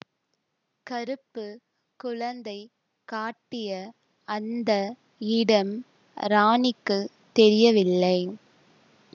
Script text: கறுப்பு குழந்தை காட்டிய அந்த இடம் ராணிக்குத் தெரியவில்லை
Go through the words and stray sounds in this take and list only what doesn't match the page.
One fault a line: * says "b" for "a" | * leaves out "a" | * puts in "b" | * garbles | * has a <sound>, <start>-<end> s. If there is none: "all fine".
all fine